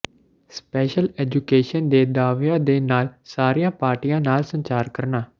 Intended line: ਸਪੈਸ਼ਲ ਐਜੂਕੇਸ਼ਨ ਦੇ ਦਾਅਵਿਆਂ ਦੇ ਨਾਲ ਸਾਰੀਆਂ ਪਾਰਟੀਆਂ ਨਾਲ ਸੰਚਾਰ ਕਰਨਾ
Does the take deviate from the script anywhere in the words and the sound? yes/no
no